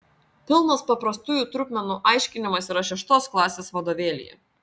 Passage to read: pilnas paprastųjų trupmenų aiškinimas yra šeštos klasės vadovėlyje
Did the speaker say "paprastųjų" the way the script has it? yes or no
yes